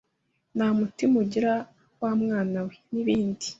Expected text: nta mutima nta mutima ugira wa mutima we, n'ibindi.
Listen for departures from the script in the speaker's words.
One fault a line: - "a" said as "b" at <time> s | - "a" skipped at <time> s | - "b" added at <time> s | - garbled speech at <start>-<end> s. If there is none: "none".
- "nta mutima" skipped at 1.1 s
- "mutima" said as "mwana" at 2.2 s